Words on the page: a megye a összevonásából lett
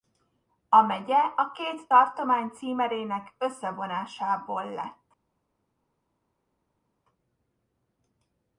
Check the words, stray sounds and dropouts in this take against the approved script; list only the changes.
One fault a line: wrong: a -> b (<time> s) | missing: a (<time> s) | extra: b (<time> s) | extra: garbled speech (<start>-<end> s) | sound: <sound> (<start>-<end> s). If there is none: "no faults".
extra: két tartomány címerének (1.5 s)